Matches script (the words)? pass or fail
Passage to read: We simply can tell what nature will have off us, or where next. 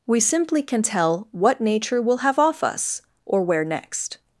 pass